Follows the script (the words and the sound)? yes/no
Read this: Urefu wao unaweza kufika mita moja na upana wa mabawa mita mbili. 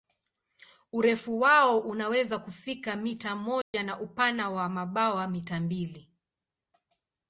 no